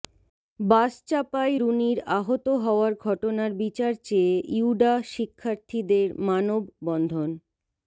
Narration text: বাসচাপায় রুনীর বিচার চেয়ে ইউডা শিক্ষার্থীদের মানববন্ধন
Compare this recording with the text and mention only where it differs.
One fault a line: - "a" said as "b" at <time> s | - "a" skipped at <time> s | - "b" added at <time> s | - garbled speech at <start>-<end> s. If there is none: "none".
- "আহত হওয়ার ঘটনার" added at 2.2 s